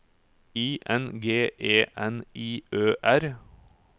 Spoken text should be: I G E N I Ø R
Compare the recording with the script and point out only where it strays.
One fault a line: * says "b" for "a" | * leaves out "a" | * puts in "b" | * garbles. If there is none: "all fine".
* puts in "N"